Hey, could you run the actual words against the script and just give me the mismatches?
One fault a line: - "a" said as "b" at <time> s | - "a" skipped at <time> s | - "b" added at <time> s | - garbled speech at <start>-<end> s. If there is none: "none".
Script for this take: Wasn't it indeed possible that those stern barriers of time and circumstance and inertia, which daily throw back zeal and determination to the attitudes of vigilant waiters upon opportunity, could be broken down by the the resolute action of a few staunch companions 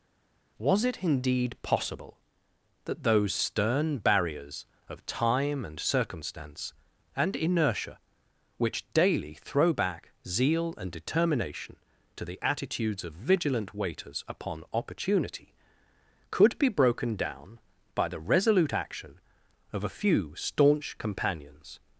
- "Wasn't" said as "Was" at 0.6 s
- "the" skipped at 18.2 s